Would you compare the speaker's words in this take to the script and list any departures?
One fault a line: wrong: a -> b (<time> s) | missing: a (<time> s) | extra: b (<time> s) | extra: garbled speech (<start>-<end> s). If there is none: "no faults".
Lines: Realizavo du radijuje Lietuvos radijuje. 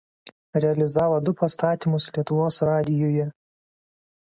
wrong: radijuje -> pastatymus (1.4 s)